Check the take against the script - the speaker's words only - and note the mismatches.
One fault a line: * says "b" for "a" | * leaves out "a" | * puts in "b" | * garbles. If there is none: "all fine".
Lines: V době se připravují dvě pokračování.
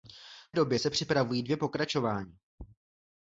all fine